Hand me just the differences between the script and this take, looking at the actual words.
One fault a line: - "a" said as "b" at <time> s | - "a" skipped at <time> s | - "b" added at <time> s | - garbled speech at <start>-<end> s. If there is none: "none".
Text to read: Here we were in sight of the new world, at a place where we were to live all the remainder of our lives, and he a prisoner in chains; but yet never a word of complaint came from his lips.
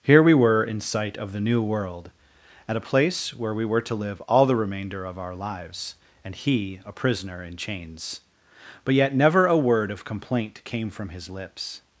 none